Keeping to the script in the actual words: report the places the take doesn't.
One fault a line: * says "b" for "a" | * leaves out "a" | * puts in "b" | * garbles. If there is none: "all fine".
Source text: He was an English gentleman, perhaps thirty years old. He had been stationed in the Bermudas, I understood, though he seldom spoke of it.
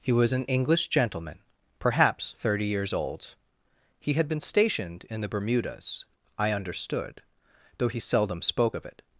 all fine